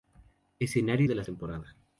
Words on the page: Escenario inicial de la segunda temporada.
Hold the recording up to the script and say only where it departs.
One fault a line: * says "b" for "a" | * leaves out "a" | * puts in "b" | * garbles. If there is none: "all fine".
* leaves out "inicial"
* leaves out "segunda"